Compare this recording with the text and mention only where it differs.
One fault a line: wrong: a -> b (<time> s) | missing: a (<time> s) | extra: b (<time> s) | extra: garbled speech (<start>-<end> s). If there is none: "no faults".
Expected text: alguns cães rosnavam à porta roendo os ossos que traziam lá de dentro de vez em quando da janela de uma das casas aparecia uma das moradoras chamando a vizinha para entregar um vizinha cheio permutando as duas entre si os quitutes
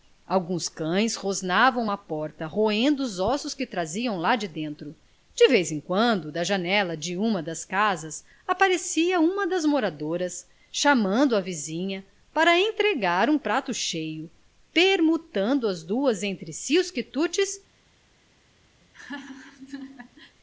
wrong: vizinha -> prato (13.4 s)